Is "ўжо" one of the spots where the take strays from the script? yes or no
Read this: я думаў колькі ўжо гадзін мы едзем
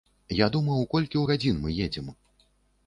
yes